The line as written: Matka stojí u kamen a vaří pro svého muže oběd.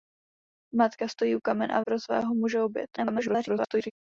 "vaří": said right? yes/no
no